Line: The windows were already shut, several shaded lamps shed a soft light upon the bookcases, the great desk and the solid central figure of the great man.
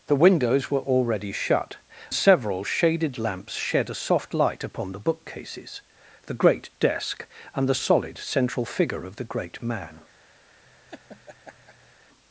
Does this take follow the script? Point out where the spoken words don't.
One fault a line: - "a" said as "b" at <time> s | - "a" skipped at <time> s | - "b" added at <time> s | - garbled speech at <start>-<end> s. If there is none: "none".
none